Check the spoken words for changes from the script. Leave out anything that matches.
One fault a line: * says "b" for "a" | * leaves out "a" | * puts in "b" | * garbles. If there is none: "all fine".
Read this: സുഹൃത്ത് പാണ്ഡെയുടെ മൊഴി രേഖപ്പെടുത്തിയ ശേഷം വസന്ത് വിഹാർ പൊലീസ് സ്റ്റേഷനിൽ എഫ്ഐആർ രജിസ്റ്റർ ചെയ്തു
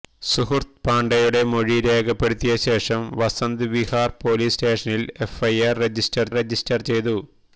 * puts in "രജിസ്റ്റർ"